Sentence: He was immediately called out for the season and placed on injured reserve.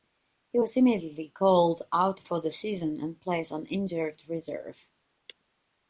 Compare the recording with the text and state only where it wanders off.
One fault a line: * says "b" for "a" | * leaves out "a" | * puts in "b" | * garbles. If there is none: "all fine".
all fine